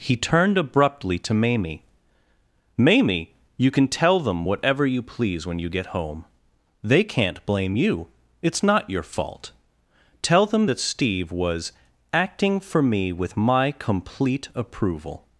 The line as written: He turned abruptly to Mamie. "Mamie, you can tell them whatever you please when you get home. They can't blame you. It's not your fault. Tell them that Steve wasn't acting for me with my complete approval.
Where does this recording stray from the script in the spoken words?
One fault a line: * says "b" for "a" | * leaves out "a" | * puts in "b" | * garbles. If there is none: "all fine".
* says "was" for "wasn't"